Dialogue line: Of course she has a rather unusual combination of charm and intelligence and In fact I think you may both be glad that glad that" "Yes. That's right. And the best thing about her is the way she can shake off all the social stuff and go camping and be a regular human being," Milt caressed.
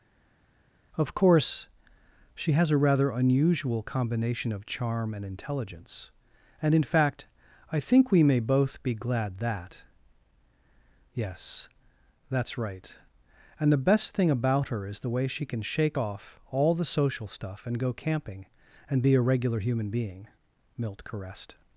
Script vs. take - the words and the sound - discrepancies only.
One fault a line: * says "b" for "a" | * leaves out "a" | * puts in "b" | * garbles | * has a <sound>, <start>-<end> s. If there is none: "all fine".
* says "we" for "you"
* leaves out "glad that"